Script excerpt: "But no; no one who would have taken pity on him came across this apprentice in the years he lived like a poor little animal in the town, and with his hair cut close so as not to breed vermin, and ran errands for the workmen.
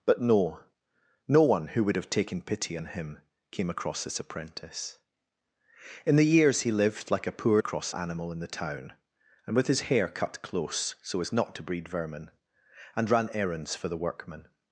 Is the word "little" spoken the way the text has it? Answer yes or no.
no